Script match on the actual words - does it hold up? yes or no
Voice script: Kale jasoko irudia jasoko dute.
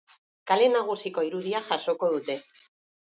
no